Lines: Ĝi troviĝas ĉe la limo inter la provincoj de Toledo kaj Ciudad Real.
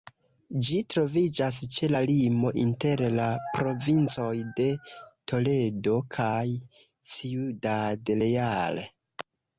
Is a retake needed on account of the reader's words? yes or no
no